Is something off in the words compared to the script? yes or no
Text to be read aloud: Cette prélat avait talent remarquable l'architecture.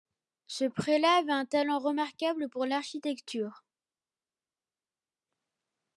yes